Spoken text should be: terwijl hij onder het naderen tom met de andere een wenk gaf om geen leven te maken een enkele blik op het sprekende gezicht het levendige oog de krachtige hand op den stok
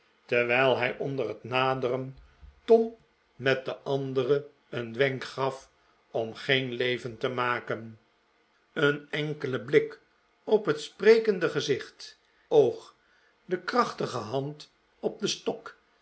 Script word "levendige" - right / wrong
wrong